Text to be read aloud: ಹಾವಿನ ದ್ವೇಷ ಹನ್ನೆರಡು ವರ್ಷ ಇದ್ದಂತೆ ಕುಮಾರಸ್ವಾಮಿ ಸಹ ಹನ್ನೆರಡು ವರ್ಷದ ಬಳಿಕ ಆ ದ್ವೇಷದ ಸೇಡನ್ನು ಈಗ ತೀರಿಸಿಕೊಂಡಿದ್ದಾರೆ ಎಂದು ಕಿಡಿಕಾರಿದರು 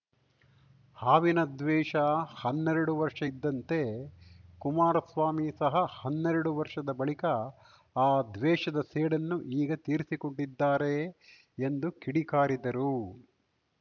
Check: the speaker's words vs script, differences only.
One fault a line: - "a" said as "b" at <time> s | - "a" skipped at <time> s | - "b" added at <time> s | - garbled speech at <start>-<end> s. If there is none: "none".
none